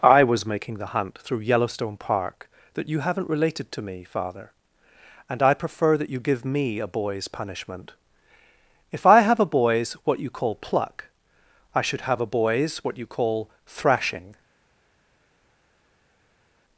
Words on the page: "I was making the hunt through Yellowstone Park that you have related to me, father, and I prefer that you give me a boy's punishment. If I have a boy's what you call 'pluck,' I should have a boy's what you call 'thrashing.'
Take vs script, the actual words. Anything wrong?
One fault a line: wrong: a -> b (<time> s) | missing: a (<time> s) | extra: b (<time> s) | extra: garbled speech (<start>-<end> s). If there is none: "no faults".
wrong: have -> haven't (3.0 s)